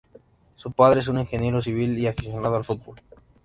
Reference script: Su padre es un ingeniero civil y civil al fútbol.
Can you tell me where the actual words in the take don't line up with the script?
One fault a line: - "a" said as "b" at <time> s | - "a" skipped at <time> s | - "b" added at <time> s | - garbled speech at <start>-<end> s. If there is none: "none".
- "civil" said as "aficionado" at 2.1 s